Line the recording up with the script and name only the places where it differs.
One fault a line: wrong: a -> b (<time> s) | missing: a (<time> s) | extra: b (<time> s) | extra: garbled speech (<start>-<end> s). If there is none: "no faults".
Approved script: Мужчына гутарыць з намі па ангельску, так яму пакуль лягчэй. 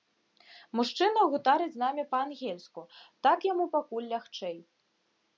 no faults